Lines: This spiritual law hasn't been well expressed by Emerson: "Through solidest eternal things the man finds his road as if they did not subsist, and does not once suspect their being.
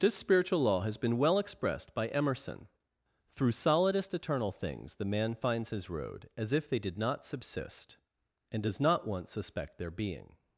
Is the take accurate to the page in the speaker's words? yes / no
no